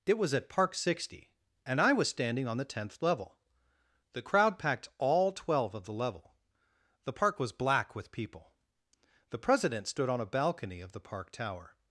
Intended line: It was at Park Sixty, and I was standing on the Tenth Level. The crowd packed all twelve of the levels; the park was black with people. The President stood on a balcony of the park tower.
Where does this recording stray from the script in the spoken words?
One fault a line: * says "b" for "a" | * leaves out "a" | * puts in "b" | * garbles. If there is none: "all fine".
* says "level" for "levels"